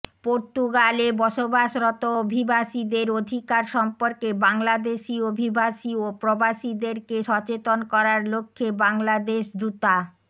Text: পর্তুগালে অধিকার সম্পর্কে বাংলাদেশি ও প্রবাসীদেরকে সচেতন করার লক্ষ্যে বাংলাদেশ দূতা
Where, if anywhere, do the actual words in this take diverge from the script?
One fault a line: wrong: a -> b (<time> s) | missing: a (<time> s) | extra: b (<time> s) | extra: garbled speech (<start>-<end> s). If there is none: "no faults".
extra: বসবাসরত অভিবাসীদের (1.2 s)
extra: অভিবাসী (5.3 s)